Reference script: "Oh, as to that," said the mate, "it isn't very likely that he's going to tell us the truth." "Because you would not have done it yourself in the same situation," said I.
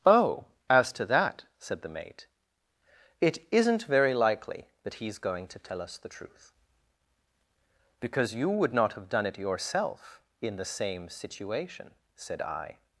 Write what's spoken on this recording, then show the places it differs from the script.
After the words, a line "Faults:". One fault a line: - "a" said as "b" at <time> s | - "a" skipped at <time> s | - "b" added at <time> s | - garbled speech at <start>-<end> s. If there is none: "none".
"Oh, as to that," said the mate, "it isn't very likely that he's going to tell us the truth." "Because you would not have done it yourself in the same situation," said I.
Faults:
none